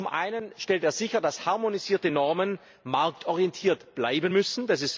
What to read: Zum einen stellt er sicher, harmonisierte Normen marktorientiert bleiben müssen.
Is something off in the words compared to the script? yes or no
yes